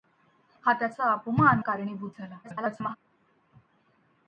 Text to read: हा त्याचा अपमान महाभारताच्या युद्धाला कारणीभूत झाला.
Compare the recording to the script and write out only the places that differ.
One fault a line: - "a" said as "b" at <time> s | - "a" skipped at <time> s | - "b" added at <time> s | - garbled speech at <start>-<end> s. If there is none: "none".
- "महाभारताच्या युद्धाला" skipped at 1.6 s
- garbled speech at 2.4-3.0 s